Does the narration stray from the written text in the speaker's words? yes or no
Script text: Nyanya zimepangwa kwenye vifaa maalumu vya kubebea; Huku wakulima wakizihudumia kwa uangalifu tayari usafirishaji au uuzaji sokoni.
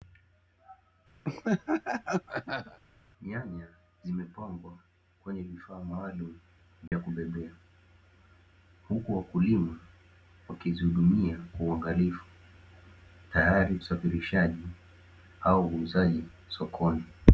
no